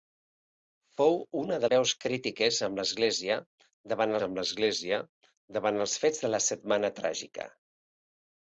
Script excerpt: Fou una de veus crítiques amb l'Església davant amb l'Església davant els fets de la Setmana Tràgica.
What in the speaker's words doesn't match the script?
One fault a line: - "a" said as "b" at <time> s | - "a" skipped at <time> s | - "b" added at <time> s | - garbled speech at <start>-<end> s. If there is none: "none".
none